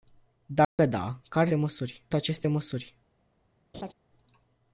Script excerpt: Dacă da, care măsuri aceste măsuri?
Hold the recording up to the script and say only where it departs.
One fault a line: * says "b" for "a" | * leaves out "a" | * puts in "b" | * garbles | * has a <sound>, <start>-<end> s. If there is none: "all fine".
* has a dropout, 0.6-0.8 s
* has a laugh, 3.7-3.9 s